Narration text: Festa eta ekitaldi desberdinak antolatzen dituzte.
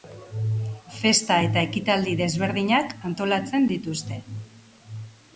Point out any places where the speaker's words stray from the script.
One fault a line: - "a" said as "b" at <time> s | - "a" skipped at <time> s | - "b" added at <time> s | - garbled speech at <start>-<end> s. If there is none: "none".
none